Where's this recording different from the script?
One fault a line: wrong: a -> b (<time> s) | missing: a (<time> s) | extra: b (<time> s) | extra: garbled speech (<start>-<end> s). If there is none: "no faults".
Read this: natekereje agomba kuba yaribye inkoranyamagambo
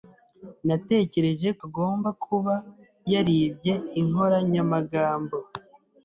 no faults